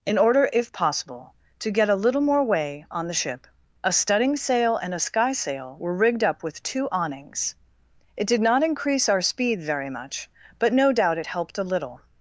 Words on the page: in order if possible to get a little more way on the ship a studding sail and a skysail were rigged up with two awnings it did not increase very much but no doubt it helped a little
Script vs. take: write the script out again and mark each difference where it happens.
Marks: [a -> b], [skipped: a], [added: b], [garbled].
in order if possible to get a little more way on the ship a studding sail and a skysail were rigged up with two awnings it did not increase [added: our speed] very much but no doubt it helped a little